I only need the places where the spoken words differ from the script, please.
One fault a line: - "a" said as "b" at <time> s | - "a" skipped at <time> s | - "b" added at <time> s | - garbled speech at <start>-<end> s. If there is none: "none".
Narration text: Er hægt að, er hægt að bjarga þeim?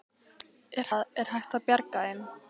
- "hægt" skipped at 0.9 s